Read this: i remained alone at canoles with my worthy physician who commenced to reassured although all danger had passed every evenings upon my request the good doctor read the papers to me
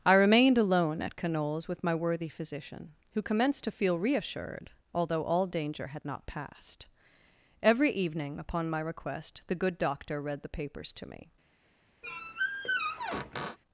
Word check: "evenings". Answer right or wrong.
wrong